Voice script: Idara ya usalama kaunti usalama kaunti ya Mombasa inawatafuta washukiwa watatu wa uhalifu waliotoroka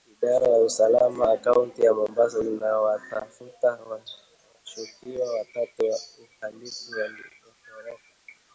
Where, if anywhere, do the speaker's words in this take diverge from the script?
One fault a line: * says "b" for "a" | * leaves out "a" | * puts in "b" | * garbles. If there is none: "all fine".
* leaves out "usalama kaunti"